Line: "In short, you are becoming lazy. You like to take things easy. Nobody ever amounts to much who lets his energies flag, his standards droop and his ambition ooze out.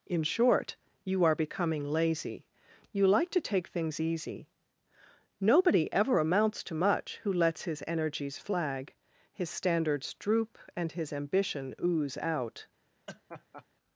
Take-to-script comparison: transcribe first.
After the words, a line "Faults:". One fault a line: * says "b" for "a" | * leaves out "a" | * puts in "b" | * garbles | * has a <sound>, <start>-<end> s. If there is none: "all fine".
"In short, you are becoming lazy. You like to take things easy. Nobody ever amounts to much who lets his energies flag, his standards droop and his ambition ooze out.
Faults:
* has a laugh, 13.1-13.7 s